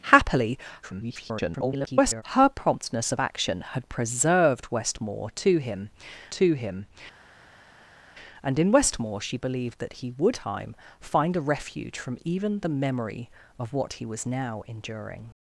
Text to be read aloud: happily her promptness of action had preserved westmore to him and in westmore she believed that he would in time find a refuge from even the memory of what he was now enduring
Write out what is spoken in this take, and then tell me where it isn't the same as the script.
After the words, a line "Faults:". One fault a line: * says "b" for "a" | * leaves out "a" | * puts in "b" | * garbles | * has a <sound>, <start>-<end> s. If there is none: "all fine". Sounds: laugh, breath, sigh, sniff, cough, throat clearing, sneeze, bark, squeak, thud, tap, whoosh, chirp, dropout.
happily [garbled] her promptness of action had preserved westmore to him to him and in westmore she believed that he would time find a refuge from even the memory of what he was now enduring
Faults:
* garbles
* puts in "to him"
* leaves out "in"